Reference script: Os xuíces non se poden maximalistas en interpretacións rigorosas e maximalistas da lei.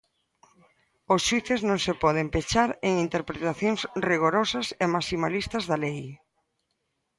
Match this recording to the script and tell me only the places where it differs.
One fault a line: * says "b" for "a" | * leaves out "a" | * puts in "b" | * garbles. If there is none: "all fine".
* says "pechar" for "maximalistas"